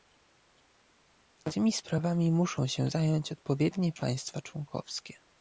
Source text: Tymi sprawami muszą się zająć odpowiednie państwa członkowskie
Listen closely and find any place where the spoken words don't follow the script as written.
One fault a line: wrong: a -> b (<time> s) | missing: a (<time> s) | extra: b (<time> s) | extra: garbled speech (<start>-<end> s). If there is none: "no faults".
no faults